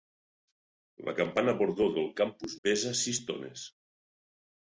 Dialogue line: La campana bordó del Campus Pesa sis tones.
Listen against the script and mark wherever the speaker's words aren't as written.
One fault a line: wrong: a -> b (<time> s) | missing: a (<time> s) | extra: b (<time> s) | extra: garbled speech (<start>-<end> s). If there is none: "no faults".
no faults